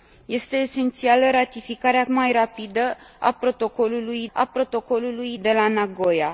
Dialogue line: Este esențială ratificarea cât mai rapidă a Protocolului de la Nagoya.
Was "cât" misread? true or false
true